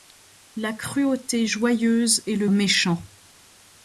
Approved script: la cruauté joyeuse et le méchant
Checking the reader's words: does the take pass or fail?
pass